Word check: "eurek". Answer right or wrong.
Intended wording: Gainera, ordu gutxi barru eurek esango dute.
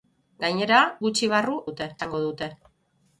wrong